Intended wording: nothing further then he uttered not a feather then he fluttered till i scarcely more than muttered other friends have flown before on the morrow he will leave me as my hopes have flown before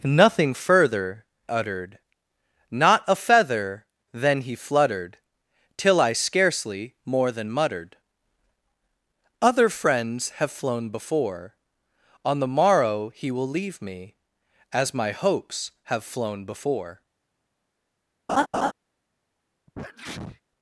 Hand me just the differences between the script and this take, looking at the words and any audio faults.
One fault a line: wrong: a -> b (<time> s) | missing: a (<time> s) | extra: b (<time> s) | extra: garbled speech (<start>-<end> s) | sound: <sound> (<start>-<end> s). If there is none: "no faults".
missing: then he (1.2 s)
sound: laugh (18.3-18.7 s)
sound: sneeze (19.7-20.4 s)